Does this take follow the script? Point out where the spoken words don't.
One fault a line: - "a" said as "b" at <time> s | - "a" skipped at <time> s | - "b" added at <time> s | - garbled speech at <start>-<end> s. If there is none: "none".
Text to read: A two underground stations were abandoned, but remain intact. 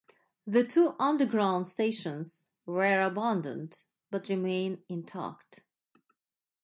- "A" said as "The" at 0.5 s